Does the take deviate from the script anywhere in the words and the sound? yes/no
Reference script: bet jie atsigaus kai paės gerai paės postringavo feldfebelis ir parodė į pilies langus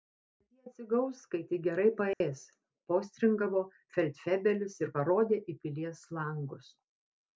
yes